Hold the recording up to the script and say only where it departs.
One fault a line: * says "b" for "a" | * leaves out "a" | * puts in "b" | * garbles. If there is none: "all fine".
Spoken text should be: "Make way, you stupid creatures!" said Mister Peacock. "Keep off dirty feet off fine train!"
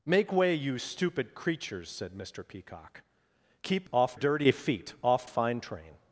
all fine